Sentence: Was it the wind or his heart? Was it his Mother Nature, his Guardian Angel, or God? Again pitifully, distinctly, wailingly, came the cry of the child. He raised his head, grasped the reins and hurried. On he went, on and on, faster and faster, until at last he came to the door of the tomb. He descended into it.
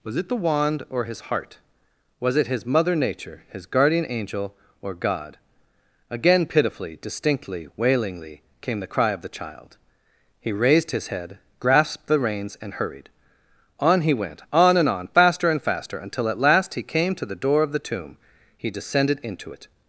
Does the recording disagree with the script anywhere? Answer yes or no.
yes